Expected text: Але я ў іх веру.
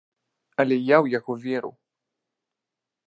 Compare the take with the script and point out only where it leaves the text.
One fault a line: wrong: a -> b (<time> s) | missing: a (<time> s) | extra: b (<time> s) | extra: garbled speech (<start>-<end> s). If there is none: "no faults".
wrong: іх -> яго (1.2 s)